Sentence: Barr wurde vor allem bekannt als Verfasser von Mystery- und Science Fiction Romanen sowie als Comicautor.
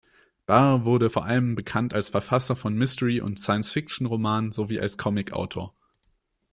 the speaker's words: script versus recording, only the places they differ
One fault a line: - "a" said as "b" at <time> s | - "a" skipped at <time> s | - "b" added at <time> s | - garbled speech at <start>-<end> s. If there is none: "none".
none